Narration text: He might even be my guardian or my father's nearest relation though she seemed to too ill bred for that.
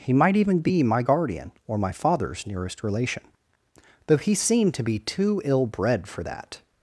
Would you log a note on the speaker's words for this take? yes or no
yes